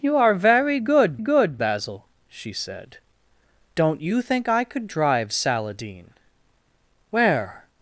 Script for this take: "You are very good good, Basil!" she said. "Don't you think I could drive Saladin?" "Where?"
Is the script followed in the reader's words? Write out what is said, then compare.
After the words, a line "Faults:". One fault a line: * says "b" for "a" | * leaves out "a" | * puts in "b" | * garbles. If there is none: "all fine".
"You are very good good, Basil!" she said. "Don't you think I could drive Saladin?" "Where?"
Faults:
all fine